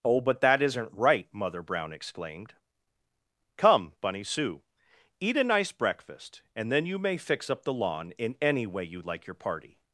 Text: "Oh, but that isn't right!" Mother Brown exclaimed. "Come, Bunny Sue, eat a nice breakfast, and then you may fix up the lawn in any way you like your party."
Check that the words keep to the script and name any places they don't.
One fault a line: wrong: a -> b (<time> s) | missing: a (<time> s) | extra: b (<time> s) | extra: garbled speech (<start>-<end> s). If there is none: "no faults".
no faults